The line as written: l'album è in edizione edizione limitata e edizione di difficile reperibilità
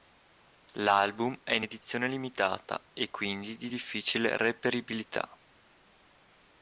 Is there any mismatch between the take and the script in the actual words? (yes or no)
yes